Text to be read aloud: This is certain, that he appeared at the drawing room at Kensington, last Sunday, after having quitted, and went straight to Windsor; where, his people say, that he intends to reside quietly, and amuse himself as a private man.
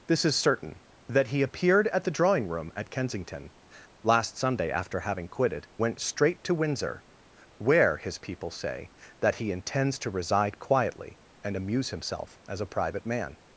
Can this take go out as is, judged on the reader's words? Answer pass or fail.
fail